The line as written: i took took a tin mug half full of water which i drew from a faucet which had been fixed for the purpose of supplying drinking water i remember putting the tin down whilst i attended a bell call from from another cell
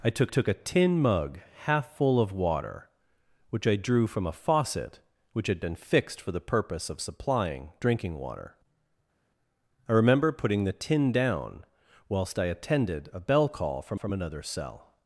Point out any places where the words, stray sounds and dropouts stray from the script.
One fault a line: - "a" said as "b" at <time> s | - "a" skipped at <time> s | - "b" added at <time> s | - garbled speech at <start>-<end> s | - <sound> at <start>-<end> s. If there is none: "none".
none